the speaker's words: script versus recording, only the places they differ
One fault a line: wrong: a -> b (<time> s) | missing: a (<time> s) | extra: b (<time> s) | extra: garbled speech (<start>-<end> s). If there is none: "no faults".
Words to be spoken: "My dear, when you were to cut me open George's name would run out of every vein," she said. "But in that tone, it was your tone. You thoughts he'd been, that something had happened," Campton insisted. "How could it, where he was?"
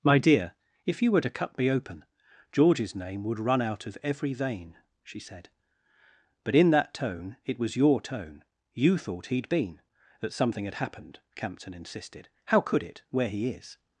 wrong: when -> if (0.9 s)
wrong: thoughts -> thought (9.0 s)
wrong: was -> is (13.5 s)